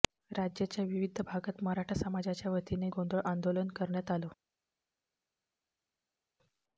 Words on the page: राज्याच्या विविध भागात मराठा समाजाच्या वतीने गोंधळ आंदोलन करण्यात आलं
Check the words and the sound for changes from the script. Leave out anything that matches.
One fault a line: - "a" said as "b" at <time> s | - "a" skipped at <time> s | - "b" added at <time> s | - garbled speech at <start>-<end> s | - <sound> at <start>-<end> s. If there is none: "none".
none